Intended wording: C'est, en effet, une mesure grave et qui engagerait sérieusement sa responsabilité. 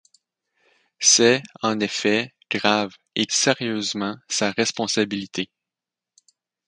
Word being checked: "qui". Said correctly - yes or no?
no